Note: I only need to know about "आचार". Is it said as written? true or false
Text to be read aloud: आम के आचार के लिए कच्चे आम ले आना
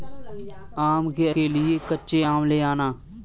false